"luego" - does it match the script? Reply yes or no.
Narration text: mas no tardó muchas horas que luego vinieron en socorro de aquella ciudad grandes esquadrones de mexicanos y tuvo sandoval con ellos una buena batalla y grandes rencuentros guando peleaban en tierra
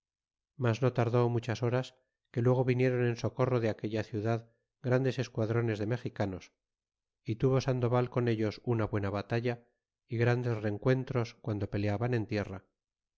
yes